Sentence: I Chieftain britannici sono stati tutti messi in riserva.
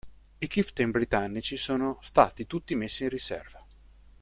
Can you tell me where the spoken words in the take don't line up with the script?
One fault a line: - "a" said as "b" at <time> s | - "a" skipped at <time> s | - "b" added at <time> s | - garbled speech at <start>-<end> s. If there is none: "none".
none